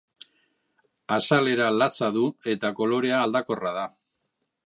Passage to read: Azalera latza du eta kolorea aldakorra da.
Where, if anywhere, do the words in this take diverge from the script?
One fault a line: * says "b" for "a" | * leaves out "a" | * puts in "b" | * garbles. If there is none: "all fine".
all fine